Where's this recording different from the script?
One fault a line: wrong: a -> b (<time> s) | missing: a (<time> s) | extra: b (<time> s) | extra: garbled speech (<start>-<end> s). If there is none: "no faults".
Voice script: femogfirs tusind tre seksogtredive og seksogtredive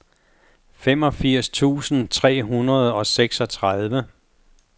wrong: seksogtredive -> hundrede (2.4 s)